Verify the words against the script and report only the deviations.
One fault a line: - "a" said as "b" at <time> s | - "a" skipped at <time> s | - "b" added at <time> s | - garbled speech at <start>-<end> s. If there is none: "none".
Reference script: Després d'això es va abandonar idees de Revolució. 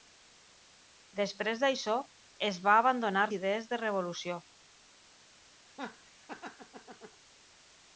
none